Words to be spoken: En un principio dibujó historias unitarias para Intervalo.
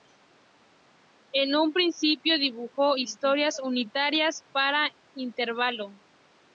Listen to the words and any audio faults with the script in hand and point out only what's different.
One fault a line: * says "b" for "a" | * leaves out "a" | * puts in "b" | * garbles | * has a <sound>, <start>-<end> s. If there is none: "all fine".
all fine